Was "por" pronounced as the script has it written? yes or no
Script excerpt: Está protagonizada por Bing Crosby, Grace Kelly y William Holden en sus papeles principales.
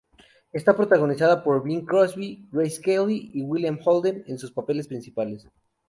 yes